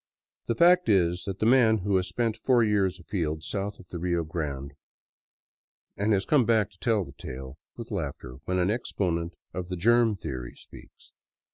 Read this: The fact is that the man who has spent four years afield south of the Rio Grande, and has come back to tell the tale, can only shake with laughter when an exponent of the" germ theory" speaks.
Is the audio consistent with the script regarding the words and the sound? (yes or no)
no